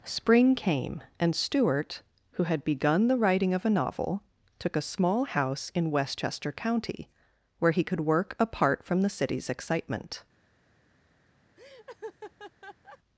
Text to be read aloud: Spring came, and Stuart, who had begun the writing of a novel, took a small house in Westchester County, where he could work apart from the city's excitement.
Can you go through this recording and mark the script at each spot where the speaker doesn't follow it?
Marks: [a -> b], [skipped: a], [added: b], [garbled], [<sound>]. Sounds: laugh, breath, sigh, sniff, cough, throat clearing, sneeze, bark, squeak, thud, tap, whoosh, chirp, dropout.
Spring came, and Stuart, who had begun the writing of a novel, took a small house in Westchester County, where he could work apart from the city's excitement. [laugh]